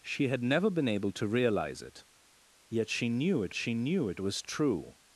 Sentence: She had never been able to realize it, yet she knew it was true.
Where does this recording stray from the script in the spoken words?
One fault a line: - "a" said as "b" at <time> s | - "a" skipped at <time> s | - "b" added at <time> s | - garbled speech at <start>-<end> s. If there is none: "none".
- "she knew it" added at 3.5 s